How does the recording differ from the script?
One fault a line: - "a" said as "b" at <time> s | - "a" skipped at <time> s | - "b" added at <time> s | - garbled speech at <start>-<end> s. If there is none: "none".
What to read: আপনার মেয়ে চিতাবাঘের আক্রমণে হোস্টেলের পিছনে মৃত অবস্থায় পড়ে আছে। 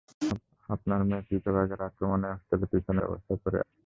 - "মৃত" skipped at 3.0 s